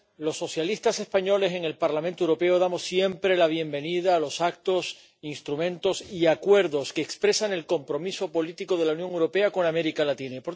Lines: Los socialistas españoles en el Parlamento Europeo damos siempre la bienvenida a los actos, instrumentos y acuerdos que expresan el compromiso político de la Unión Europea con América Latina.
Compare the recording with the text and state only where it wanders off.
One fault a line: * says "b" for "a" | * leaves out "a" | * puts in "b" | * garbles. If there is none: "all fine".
all fine